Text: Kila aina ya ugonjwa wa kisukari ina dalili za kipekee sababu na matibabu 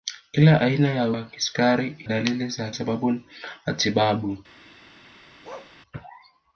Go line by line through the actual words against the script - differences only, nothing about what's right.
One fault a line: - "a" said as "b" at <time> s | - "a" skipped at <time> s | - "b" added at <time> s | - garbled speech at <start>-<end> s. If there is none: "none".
- "ugonjwa" skipped at 1.1 s
- "ina" skipped at 2.0 s
- "kipekee" skipped at 2.7 s